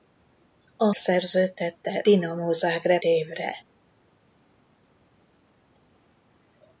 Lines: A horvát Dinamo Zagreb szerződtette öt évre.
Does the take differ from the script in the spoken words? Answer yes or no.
yes